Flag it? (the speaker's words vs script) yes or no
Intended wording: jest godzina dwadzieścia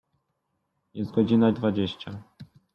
no